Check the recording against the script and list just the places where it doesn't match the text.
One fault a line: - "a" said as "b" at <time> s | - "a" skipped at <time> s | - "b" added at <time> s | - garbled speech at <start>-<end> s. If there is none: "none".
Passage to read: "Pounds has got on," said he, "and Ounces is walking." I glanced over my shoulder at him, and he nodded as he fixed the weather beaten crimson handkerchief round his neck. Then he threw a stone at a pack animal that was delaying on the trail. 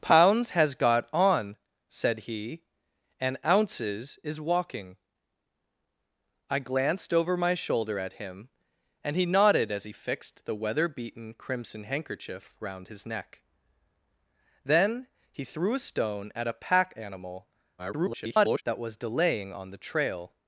- garbled speech at 17.8-18.6 s